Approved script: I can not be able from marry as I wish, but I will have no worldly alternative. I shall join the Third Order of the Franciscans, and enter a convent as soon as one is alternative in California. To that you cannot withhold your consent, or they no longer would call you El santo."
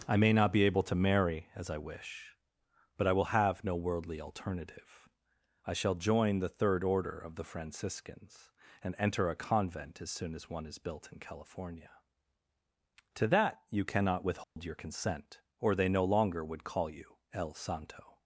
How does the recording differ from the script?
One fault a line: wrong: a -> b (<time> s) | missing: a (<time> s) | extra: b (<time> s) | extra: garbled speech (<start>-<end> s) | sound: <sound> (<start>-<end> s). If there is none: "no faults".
wrong: can -> may (0.2 s)
wrong: from -> to (0.8 s)
wrong: alternative -> built (10.8 s)
sound: dropout (14.4-14.6 s)